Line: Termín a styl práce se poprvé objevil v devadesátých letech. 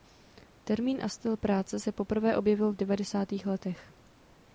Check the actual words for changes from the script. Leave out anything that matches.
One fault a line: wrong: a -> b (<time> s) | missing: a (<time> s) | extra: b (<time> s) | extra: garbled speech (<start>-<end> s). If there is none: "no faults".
no faults